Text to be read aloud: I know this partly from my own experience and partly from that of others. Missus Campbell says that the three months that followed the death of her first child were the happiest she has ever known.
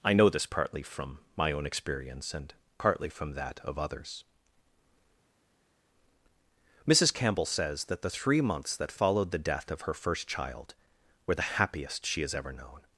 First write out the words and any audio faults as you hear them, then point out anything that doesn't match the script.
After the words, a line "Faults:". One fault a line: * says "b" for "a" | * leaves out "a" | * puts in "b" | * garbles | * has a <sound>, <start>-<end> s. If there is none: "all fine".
I know this partly from my own experience and partly from that of others. Missus Campbell says that the three months that followed the death of her first child were the happiest she has ever known.
Faults:
all fine